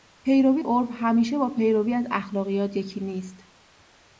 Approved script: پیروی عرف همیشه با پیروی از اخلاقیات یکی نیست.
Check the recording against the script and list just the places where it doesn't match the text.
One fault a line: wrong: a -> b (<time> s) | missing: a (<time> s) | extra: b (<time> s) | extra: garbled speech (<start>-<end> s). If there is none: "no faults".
no faults